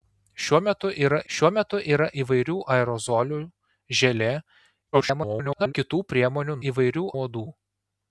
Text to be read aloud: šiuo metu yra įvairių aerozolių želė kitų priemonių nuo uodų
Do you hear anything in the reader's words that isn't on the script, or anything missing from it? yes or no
yes